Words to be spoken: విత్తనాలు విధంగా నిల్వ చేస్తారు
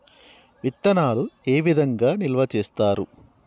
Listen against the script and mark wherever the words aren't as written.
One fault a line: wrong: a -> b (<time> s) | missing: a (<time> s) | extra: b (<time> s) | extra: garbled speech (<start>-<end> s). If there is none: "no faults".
extra: ఏ (1.5 s)